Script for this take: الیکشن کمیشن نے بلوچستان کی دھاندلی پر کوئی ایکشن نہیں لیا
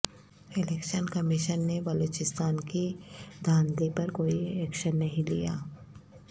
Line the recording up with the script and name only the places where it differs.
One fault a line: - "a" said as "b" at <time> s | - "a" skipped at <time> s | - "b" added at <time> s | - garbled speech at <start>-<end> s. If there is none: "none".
none